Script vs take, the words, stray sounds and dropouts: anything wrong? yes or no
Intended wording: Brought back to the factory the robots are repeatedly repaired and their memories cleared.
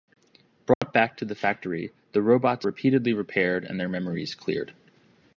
yes